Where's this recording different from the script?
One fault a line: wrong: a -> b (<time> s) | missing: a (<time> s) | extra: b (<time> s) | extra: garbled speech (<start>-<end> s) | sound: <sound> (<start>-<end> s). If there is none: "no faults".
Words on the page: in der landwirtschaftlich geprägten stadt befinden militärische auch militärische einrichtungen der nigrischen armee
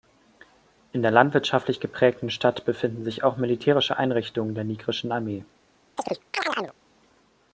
wrong: militärische -> sich (3.0 s)
sound: chirp (6.0-6.7 s)